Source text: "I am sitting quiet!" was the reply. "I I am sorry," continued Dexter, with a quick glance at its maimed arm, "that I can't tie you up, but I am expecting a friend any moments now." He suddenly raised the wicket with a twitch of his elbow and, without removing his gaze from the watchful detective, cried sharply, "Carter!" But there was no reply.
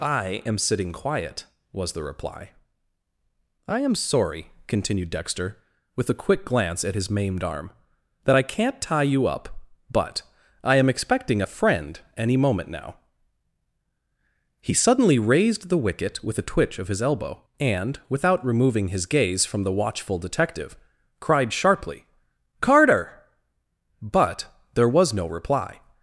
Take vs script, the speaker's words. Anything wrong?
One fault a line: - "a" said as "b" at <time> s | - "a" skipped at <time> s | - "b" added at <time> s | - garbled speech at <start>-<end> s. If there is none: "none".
- "I" skipped at 3.8 s
- "its" said as "his" at 7.0 s
- "moments" said as "moment" at 12.4 s